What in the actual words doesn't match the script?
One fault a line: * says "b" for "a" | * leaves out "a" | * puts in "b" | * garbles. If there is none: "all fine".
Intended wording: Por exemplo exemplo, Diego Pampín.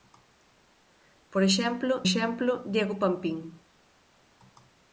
all fine